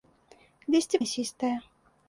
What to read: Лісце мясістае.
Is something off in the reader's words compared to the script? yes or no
no